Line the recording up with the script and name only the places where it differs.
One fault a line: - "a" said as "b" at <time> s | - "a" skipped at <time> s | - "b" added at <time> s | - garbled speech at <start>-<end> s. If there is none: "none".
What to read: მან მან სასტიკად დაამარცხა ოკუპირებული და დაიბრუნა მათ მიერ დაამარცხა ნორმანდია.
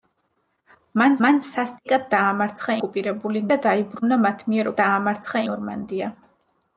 none